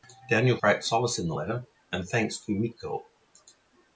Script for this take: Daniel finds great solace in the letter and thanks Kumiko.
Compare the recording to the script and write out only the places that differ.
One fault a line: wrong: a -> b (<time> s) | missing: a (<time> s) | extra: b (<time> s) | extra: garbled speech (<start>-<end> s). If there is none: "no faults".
missing: finds (0.6 s)